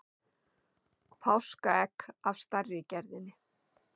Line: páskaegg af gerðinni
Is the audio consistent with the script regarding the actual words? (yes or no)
no